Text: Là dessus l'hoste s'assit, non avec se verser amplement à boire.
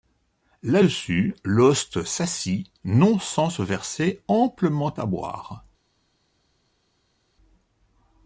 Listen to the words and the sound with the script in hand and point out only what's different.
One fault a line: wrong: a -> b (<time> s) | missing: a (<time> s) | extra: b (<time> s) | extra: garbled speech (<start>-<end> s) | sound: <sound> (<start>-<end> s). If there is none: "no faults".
wrong: avec -> sans (3.2 s)